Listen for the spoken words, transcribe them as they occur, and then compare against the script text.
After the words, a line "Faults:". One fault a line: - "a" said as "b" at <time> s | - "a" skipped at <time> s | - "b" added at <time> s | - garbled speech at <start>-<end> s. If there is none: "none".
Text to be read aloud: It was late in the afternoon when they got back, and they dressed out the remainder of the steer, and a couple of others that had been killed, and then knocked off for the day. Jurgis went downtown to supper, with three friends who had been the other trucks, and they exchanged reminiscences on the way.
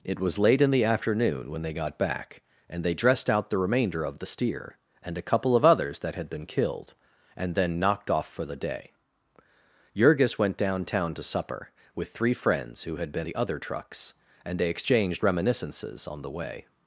It was late in the afternoon when they got back, and they dressed out the remainder of the steer, and a couple of others that had been killed, and then knocked off for the day. Jurgis went downtown to supper, with three friends who had been the other trucks, and they exchanged reminiscences on the way.
Faults:
none